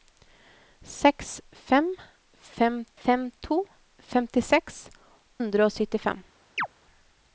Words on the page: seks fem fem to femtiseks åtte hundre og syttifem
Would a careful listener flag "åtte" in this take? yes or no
yes